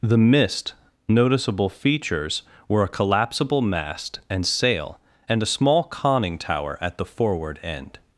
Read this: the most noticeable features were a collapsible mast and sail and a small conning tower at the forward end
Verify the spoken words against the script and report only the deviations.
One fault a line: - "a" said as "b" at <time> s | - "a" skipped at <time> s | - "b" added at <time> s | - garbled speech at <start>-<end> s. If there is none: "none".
- "most" said as "mist" at 0.2 s